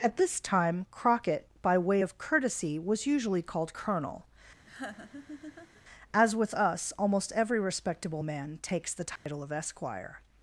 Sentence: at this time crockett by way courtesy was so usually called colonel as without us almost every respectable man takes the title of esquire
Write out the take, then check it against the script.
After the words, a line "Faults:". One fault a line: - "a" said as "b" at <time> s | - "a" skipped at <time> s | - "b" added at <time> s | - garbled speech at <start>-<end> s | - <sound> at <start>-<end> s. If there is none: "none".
at this time crockett by way of courtesy was usually called colonel as with us almost every respectable man takes the title of esquire
Faults:
- "of" added at 2.0 s
- "so" skipped at 3.0 s
- laugh at 4.7-5.8 s
- "without" said as "with" at 6.3 s
- dropout at 9.2-9.3 s